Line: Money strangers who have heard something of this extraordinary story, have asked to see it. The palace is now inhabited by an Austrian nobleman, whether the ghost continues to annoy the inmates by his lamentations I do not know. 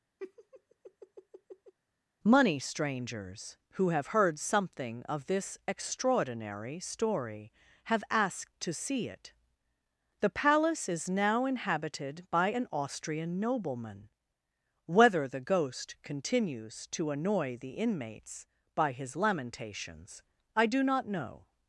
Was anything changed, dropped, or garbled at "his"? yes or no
no